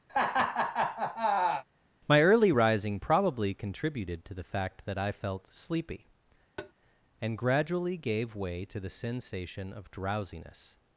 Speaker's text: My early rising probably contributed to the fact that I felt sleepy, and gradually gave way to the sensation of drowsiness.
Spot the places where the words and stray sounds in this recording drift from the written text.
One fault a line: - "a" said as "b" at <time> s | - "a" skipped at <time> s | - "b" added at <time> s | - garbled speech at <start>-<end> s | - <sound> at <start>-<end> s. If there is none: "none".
- laugh at 0.1-1.6 s
- tap at 6.6-6.7 s